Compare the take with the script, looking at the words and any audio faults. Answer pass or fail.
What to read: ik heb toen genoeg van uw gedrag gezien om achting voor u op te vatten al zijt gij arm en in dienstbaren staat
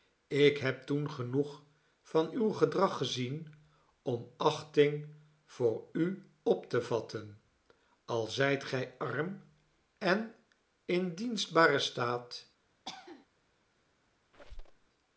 fail